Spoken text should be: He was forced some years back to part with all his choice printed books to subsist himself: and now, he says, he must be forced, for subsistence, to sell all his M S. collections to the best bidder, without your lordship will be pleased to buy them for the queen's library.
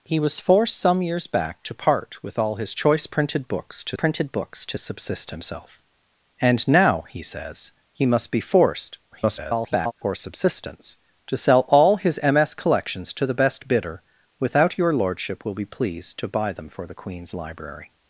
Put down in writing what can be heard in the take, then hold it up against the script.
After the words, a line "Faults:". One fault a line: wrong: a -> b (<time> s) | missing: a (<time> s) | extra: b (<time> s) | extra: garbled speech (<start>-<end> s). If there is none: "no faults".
He was forced some years back to part with all his choice printed books to printed books to subsist himself: and now, he says, he must be forced, [garbled] for subsistence, to sell all his M S. collections to the best bidder, without your lordship will be pleased to buy them for the queen's library.
Faults:
extra: printed books to (3.9 s)
extra: garbled speech (9.1-9.9 s)